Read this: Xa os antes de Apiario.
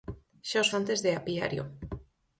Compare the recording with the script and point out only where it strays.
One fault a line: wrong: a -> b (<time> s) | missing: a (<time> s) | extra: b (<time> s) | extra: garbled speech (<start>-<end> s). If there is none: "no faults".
no faults